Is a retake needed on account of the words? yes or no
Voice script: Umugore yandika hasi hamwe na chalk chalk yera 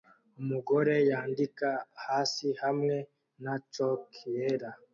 yes